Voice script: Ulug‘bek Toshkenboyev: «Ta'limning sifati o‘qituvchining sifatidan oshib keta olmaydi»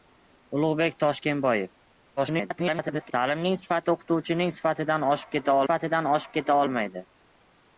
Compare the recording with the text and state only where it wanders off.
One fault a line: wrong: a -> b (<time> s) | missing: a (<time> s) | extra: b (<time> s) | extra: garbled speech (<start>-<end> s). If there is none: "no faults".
extra: garbled speech (2.2-3.1 s)
extra: sifatidan oshib keta (5.7 s)